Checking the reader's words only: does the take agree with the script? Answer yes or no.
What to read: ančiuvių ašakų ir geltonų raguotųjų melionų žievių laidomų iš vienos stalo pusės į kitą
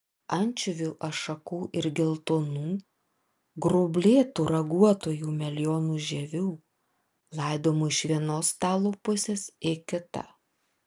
no